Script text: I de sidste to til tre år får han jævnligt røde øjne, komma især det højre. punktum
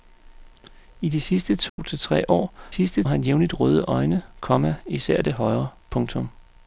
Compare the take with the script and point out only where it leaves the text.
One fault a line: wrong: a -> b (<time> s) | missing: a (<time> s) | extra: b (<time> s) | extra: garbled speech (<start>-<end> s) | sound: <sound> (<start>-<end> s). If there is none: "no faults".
sound: dropout (1.7-1.8 s)
wrong: får -> sidste (2.7 s)